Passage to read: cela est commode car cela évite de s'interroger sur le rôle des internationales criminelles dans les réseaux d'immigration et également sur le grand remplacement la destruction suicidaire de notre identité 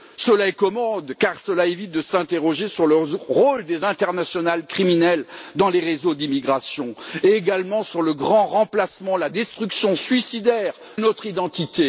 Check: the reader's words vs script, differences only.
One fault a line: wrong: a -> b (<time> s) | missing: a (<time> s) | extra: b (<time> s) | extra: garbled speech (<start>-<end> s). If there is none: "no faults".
missing: de (10.7 s)